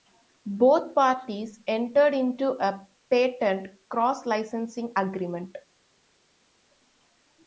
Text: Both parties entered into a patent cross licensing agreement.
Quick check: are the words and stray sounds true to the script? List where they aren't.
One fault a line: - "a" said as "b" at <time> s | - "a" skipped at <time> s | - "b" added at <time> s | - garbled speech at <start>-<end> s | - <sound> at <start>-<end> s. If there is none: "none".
none